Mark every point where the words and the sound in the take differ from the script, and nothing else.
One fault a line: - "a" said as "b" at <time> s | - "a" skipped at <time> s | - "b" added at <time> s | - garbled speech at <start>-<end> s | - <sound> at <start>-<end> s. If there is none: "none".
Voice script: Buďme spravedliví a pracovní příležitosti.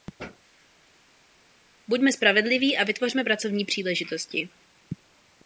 - "vytvořme" added at 2.8 s